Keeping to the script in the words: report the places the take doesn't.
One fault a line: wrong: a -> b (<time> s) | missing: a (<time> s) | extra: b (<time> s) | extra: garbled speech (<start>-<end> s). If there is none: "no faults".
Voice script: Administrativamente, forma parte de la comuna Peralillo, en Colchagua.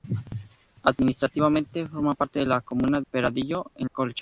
no faults